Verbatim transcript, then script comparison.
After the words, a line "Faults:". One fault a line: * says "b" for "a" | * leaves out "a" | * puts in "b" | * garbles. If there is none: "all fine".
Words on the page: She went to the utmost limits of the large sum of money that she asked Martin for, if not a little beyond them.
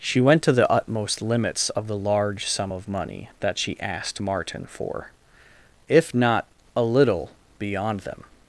She went to the utmost limits of the large sum of money that she asked Martin for, if not a little beyond them.
Faults:
all fine